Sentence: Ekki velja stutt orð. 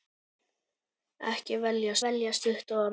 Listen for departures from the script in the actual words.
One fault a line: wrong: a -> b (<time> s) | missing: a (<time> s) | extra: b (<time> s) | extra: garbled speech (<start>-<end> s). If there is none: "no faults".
extra: velja (2.1 s)